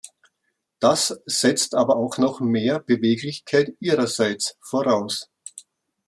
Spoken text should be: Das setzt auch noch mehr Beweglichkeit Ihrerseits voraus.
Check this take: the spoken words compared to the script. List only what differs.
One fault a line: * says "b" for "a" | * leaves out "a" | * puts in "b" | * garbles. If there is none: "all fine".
* puts in "aber"